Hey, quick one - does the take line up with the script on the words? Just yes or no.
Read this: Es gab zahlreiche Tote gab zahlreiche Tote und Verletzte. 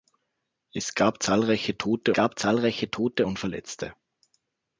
yes